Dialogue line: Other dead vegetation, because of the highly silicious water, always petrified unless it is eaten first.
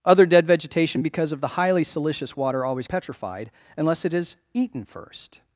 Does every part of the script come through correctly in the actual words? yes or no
yes